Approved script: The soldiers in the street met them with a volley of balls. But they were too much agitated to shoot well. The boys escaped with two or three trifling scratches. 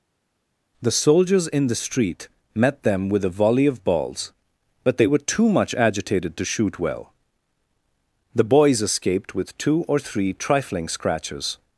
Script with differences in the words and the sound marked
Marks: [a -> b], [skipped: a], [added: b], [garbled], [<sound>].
The soldiers in the street met them with a volley of balls. But they were too much agitated to shoot well. The boys escaped with two or three trifling scratches.